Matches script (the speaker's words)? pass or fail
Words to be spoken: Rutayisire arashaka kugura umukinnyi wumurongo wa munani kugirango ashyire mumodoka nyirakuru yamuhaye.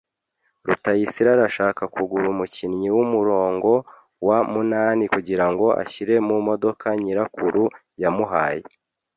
pass